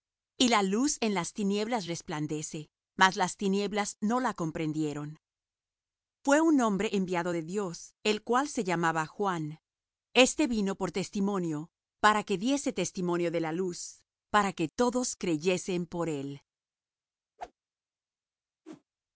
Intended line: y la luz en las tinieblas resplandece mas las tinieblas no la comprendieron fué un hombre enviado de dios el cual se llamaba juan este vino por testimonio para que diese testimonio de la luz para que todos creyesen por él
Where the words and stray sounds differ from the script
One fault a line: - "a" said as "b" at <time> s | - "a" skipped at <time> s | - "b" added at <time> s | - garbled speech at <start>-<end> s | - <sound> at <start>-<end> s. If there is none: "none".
- whoosh at 17.4-17.5 s
- whoosh at 18.6-18.8 s